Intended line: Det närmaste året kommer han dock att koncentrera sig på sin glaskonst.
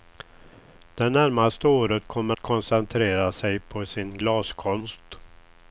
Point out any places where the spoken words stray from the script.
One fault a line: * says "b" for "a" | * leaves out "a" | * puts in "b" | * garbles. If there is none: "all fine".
* leaves out "han dock att"